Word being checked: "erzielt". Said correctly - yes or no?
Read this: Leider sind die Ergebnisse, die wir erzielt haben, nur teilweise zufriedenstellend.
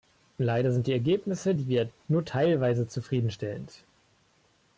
no